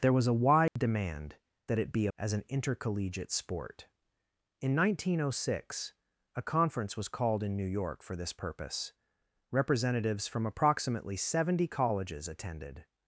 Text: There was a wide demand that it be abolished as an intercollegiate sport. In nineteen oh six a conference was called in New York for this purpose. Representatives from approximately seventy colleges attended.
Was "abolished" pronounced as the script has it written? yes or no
no